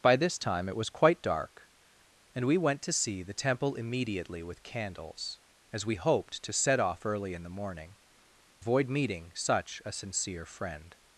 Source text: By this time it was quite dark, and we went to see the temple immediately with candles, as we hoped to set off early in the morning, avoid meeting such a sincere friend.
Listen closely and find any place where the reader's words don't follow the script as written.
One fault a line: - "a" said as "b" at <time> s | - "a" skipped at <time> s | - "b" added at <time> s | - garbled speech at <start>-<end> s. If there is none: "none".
none